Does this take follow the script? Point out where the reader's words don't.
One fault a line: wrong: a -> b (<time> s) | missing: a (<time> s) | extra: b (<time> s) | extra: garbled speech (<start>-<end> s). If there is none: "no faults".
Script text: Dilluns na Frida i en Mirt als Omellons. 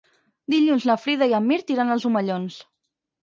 extra: iran (1.8 s)